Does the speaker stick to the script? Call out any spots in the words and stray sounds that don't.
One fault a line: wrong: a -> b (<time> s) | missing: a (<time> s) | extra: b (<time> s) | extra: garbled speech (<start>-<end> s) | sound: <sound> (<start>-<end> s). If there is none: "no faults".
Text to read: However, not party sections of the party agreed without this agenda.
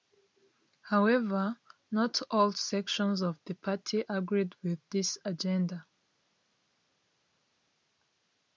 wrong: party -> all (2.3 s)
wrong: without -> with (4.6 s)